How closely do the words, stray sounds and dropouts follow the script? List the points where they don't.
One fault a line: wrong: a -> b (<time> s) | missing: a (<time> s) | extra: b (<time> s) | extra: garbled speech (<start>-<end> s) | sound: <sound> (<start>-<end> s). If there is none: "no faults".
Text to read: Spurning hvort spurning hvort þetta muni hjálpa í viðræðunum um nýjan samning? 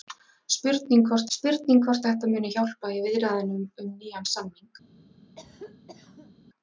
sound: cough (5.4-6.3 s)